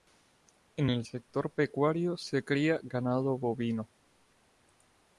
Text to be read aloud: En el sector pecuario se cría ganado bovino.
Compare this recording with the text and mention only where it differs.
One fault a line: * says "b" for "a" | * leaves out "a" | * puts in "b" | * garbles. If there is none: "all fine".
all fine